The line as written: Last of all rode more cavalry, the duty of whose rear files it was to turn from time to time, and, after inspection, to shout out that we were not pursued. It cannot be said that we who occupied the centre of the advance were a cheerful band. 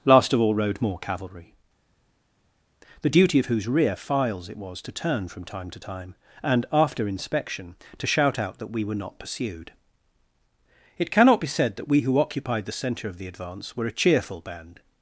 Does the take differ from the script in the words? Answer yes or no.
no